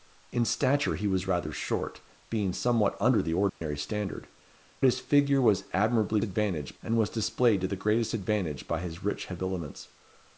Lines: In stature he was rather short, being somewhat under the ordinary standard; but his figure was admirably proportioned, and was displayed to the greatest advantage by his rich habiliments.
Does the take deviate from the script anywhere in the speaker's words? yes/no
yes